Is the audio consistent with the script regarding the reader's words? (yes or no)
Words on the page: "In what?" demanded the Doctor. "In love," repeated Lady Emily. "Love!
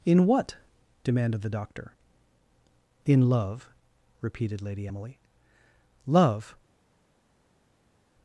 yes